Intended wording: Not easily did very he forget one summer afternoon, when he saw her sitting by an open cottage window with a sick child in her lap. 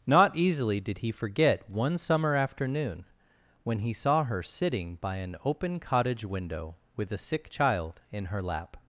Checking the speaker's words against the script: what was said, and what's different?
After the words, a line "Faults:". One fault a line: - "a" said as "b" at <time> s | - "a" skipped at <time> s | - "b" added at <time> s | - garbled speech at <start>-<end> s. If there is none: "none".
Not easily did he forget one summer afternoon, when he saw her sitting by an open cottage window with a sick child in her lap.
Faults:
- "very" skipped at 1.0 s